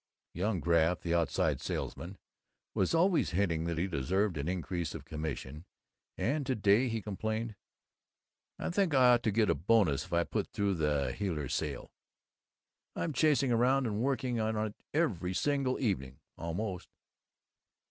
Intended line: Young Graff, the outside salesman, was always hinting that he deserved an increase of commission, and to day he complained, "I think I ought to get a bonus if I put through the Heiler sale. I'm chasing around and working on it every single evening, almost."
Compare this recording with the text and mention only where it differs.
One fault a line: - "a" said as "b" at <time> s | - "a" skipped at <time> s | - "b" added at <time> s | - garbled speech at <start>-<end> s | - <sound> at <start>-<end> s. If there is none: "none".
none